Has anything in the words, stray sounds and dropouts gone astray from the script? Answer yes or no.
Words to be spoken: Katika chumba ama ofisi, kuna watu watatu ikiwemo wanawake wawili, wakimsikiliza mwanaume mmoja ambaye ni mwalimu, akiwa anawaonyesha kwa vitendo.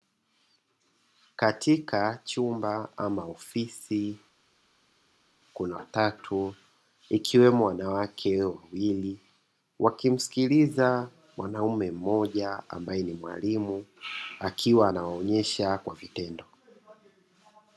yes